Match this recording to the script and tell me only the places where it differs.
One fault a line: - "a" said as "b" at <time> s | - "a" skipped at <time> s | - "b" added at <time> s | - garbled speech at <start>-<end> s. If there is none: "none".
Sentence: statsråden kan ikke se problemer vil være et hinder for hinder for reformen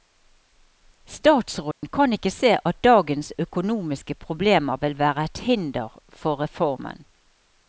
- "at dagens økonomiske" added at 2.7 s
- "hinder for" skipped at 6.4 s